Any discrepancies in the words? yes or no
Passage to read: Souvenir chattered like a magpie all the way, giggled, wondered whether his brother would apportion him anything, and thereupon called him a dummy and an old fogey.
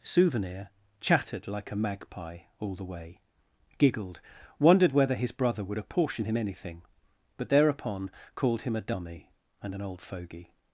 yes